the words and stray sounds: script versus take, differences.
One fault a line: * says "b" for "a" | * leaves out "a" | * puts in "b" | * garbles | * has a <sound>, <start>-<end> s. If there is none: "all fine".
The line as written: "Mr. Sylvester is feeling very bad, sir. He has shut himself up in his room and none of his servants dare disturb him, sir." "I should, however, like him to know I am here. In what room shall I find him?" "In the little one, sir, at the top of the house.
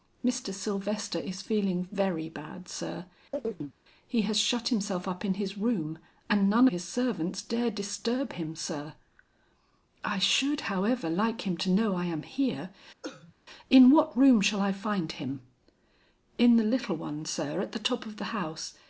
* has a chirp, 3.3-3.7 s
* leaves out "of"
* has a cough, 13.0-13.3 s